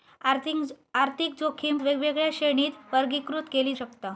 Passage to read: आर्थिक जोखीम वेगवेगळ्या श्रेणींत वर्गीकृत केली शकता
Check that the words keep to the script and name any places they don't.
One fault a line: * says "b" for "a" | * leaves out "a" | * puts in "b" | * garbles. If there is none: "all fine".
all fine